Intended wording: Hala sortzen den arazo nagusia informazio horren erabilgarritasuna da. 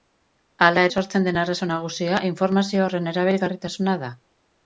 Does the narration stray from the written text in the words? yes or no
no